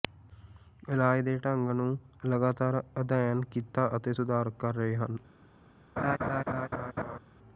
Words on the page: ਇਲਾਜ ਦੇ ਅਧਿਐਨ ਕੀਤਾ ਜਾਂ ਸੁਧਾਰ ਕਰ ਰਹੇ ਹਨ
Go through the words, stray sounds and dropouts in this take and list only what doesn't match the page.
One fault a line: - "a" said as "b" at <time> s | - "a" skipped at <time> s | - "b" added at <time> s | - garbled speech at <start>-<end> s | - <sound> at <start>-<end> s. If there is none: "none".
- "ਢੰਗ ਨੂੰ ਲਗਾਤਾਰ" added at 1.4 s
- "ਜਾਂ" said as "ਅਤੇ" at 4.0 s
- laugh at 6.0-7.2 s